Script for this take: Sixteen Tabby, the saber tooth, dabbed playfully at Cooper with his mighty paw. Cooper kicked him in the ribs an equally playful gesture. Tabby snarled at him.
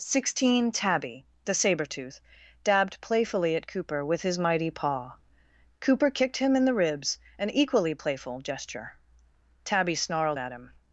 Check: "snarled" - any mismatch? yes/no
no